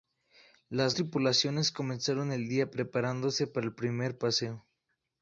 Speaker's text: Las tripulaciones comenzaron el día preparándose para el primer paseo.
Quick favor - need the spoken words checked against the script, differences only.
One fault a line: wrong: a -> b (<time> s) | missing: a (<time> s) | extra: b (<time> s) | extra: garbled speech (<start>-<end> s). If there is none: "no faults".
no faults